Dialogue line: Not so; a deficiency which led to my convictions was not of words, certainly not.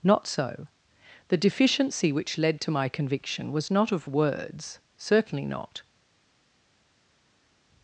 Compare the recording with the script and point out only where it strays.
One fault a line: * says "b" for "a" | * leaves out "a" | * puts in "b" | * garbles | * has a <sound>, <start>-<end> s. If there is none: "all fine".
* says "the" for "a"
* says "conviction" for "convictions"